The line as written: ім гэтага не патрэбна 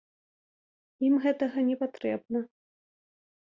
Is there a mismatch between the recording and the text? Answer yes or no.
no